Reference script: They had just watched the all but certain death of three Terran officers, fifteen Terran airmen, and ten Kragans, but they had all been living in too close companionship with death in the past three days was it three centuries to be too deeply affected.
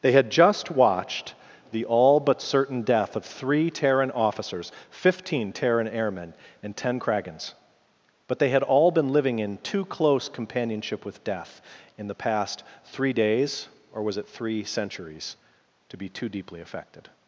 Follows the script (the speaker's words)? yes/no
no